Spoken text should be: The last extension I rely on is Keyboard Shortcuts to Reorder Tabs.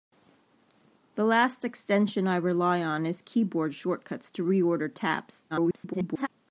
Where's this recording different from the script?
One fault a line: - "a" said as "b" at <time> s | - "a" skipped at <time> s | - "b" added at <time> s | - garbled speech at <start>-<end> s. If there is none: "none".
- garbled speech at 5.5-6.3 s